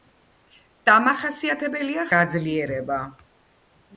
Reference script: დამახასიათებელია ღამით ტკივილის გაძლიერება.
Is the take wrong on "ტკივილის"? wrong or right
wrong